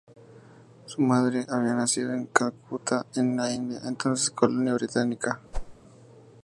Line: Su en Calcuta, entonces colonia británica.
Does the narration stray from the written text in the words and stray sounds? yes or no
yes